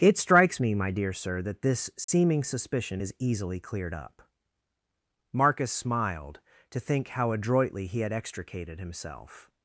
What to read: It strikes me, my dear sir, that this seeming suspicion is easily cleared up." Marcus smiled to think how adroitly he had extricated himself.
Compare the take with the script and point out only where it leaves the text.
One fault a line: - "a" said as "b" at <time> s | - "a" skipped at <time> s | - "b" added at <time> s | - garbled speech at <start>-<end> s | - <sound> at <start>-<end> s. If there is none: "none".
- dropout at 2.0-2.1 s